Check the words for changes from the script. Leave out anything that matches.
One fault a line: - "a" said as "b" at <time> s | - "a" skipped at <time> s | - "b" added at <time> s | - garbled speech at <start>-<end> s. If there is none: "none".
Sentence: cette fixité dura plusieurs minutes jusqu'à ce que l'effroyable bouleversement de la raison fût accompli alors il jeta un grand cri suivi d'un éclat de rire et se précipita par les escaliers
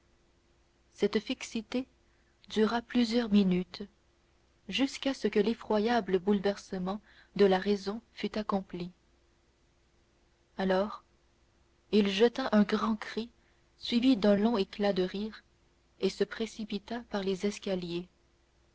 - "long" added at 14.3 s